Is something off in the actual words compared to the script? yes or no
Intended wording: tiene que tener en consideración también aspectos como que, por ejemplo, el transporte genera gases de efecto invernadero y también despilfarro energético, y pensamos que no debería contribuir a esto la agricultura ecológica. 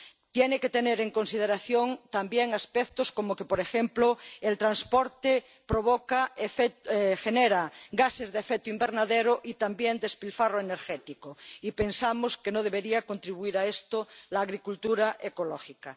no